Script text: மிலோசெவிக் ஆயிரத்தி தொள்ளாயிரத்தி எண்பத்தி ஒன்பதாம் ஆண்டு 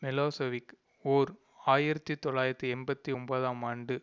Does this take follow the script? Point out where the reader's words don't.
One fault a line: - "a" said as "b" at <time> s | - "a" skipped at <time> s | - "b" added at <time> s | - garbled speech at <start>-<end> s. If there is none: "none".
- "ஓர்" added at 1.1 s